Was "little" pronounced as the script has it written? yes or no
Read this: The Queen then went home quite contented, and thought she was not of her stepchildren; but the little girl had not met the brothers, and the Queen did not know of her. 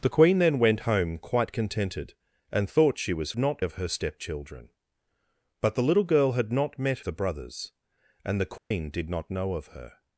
yes